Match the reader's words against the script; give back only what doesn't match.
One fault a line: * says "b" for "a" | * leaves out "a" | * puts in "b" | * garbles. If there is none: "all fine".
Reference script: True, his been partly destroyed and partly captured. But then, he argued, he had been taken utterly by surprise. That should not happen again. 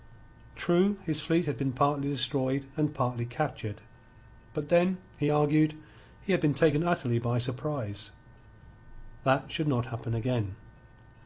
* puts in "fleet had"